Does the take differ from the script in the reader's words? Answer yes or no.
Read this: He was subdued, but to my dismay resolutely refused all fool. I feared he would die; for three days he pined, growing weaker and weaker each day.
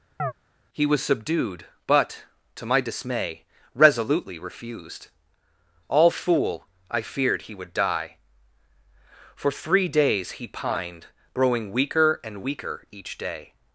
no